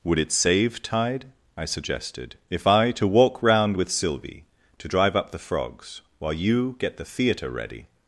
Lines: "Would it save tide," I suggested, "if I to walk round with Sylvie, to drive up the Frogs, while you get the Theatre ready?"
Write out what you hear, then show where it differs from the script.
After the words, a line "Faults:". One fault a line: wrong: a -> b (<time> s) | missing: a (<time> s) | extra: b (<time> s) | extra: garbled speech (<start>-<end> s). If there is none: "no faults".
"Would it save tide," I suggested, "if I to walk round with Sylvie, to drive up the Frogs, while you get the Theatre ready?"
Faults:
no faults